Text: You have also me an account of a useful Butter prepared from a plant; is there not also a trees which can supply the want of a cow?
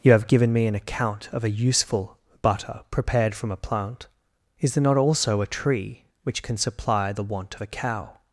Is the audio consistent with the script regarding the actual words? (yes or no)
no